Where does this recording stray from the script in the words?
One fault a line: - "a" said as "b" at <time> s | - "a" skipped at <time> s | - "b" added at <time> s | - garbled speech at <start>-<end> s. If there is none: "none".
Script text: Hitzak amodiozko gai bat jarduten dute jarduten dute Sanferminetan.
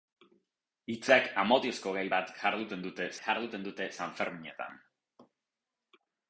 none